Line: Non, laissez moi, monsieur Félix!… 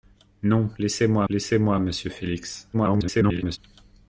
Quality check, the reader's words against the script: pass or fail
fail